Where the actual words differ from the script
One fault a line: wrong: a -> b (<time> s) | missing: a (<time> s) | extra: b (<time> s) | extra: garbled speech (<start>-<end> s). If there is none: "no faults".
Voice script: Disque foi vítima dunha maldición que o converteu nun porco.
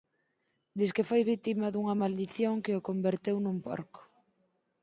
no faults